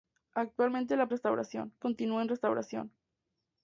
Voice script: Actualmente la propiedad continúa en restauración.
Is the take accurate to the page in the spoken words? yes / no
no